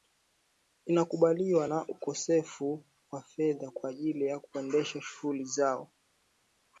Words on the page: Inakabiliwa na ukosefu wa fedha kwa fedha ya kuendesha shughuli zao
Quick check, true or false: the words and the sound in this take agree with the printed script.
false